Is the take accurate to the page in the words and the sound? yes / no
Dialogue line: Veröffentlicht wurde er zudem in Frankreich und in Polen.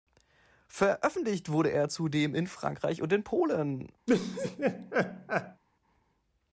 no